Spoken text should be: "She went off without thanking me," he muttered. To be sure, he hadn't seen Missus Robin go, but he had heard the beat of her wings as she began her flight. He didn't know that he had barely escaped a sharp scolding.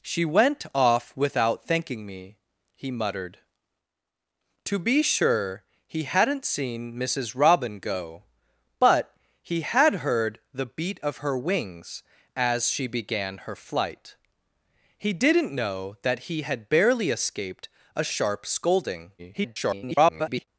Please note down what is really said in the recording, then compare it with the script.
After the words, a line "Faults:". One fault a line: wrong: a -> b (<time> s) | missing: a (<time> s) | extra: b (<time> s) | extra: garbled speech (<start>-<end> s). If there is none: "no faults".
"She went off without thanking me," he muttered. To be sure, he hadn't seen Missus Robin go, but he had heard the beat of her wings as she began her flight. He didn't know that he had barely escaped a sharp scolding. [garbled]
Faults:
extra: garbled speech (19.2-20.5 s)